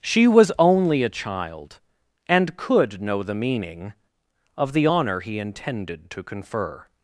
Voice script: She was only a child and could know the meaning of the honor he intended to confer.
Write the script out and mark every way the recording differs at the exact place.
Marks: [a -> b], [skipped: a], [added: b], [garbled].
She was only a child and could know the meaning of the honor he intended to confer.